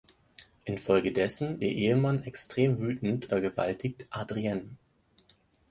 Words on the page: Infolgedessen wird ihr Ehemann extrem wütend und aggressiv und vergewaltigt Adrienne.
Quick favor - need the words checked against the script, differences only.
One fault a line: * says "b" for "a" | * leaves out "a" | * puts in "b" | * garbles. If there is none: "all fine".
* leaves out "wird"
* leaves out "und aggressiv und"